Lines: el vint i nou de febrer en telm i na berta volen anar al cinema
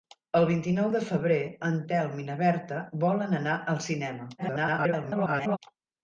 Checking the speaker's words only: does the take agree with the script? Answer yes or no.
no